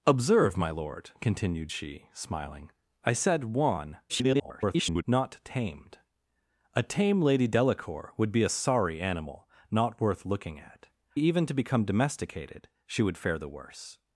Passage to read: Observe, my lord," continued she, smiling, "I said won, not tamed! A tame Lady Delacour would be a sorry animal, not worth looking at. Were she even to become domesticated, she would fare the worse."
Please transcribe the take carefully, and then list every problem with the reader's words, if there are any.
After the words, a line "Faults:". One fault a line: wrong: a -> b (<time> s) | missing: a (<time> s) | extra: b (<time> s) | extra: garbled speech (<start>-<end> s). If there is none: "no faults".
Observe, my lord," continued she, smiling, "I said won, [garbled] not tamed! A tame Lady Delacour would be a sorry animal, not worth looking at. Even to become domesticated, she would fare the worse."
Faults:
extra: garbled speech (4.1-5.0 s)
missing: Were she (10.9 s)